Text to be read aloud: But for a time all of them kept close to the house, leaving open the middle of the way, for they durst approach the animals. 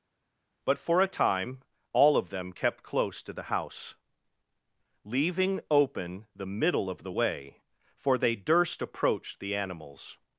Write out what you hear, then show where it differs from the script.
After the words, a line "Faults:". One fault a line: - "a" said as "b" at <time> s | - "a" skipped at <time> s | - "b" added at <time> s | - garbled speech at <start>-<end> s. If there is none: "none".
But for a time all of them kept close to the house, leaving open the middle of the way, for they durst approach the animals.
Faults:
none